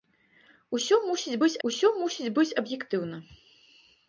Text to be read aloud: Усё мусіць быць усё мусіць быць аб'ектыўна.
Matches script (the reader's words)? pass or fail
pass